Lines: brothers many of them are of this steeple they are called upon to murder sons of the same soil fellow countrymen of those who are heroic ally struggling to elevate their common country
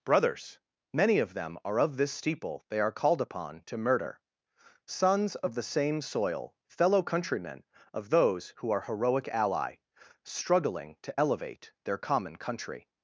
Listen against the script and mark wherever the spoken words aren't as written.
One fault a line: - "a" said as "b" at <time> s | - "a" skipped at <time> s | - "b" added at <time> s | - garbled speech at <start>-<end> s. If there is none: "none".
none